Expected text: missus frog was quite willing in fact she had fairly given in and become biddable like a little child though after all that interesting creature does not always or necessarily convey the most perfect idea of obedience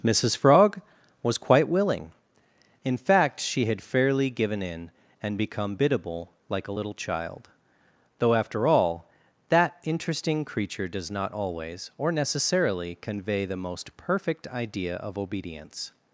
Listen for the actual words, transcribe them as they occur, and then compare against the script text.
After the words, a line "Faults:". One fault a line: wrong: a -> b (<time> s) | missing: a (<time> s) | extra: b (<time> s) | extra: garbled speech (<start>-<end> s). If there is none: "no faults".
missus frog was quite willing in fact she had fairly given in and become biddable like a little child though after all that interesting creature does not always or necessarily convey the most perfect idea of obedience
Faults:
no faults